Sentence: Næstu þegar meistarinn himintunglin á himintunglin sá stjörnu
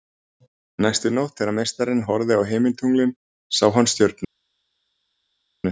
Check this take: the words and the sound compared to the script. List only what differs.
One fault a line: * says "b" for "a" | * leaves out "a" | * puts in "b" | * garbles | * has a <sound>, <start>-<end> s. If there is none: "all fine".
* puts in "nótt"
* says "horfði" for "himintunglin"
* puts in "hann"